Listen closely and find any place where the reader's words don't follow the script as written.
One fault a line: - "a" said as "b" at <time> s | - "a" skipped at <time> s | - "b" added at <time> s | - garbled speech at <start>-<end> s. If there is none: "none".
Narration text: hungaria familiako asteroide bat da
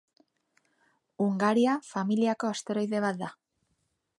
none